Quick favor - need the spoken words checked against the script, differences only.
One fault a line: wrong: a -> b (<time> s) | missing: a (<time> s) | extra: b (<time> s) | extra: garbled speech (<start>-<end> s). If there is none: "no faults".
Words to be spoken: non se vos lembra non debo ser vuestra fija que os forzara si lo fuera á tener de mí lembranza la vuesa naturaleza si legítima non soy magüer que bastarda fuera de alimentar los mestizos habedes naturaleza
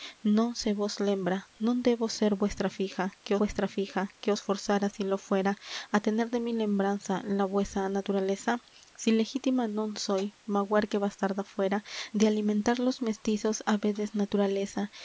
extra: vuestra fija que (3.4 s)